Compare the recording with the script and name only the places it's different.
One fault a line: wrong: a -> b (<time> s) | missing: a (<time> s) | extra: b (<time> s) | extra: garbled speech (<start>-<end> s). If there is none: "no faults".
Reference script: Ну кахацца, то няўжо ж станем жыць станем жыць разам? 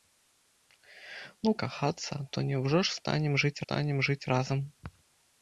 no faults